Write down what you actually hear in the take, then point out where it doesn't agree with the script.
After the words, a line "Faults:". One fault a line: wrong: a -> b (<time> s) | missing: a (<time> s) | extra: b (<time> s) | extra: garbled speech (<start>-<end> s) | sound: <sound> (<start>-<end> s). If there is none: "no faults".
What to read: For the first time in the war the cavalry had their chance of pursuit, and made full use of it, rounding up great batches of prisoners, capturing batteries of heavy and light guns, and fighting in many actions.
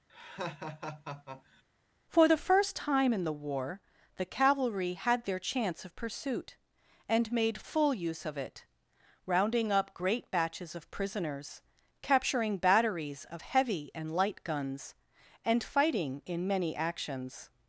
For the first time in the war the cavalry had their chance of pursuit, and made full use of it, rounding up great batches of prisoners, capturing batteries of heavy and light guns, and fighting in many actions.
Faults:
sound: laugh (0.1-1.6 s)